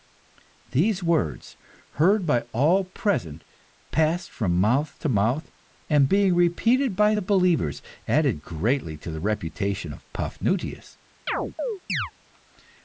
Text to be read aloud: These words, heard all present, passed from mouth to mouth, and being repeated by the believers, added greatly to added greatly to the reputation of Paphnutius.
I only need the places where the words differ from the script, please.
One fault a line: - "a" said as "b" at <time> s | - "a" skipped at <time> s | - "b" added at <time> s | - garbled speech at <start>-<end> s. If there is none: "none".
- "by" added at 2.2 s
- "added greatly to" skipped at 9.1 s